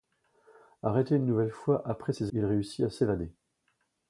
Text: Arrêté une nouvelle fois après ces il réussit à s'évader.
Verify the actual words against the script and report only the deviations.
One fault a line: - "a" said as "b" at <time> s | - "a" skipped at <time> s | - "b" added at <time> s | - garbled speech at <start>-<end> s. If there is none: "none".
none